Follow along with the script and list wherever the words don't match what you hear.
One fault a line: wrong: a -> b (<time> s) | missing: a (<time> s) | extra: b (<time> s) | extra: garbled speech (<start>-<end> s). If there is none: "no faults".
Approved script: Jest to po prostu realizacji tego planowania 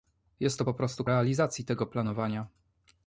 no faults